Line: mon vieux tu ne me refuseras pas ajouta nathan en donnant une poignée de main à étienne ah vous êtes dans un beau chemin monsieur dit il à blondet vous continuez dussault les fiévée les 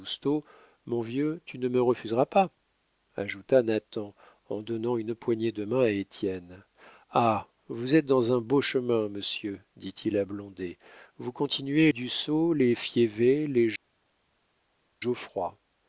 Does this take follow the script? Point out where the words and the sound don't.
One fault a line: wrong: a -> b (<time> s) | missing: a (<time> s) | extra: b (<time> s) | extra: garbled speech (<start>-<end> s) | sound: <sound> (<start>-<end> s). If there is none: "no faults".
no faults